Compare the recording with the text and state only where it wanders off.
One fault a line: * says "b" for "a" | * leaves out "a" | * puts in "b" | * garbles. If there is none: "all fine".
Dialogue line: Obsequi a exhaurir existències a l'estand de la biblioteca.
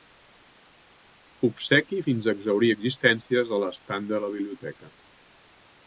* puts in "fins"